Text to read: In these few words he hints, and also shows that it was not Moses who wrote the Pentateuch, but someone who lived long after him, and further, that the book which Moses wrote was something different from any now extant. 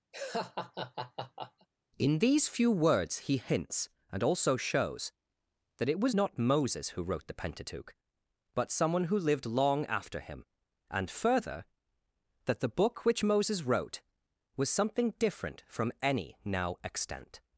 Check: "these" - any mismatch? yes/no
no